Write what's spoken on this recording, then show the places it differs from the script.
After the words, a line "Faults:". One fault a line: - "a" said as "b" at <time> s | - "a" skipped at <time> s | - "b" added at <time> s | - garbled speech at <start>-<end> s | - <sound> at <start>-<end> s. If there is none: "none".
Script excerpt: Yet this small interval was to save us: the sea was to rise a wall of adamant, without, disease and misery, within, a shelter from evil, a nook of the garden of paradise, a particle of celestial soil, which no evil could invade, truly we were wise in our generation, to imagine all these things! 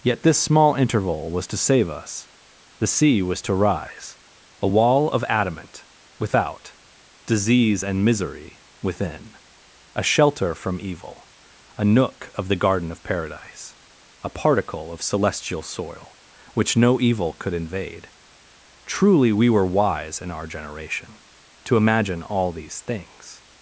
Yet this small interval was to save us: the sea was to rise a wall of adamant, without, disease and misery, within, a shelter from evil, a nook of the garden of paradise, a particle of celestial soil, which no evil could invade, truly we were wise in our generation, to imagine all these things!
Faults:
none